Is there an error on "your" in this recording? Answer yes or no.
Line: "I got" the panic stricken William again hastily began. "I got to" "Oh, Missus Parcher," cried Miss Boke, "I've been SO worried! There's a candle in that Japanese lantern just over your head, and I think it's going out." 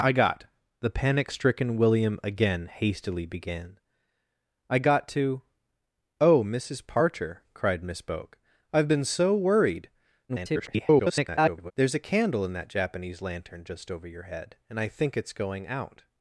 no